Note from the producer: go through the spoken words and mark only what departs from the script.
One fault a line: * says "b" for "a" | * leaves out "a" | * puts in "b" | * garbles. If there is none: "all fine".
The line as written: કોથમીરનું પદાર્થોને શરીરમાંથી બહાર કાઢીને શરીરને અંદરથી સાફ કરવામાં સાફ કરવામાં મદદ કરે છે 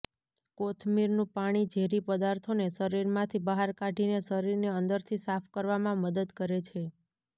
* puts in "પાણી ઝેરી"
* leaves out "સાફ કરવામાં"